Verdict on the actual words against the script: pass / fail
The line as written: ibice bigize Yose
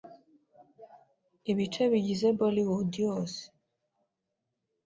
fail